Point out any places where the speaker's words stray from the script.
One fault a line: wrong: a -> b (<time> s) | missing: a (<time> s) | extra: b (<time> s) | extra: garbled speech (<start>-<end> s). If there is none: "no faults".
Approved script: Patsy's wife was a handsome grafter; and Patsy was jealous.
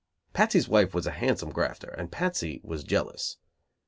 no faults